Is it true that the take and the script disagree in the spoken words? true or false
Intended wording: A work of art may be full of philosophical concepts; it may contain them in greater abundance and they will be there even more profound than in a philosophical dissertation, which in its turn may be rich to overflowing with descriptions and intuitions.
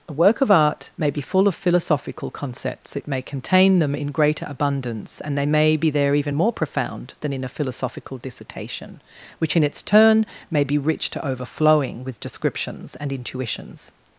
true